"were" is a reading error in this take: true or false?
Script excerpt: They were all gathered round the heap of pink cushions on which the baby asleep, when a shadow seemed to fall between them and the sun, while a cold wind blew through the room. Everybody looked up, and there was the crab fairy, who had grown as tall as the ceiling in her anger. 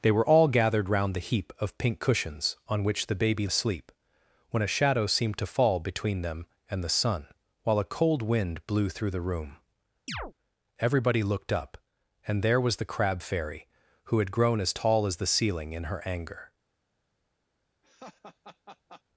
false